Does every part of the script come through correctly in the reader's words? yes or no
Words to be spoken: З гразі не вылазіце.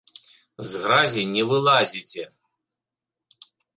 yes